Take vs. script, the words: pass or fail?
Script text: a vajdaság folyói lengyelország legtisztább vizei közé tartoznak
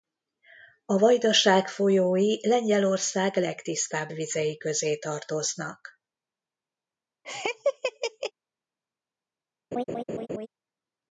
pass